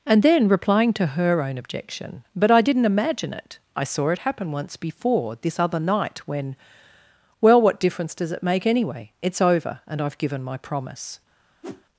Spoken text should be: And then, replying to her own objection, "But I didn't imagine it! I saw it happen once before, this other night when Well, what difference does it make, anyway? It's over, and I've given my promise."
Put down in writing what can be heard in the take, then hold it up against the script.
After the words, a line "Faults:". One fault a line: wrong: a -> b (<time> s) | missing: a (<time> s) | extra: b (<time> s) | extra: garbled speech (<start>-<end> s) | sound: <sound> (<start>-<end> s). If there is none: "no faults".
And then, replying to her own objection, "But I didn't imagine it! I saw it happen once before, this other night when Well, what difference does it make, anyway? It's over, and I've given my promise."
Faults:
sound: whoosh (11.6-11.8 s)